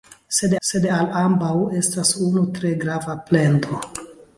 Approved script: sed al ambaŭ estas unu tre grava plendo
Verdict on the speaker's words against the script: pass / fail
fail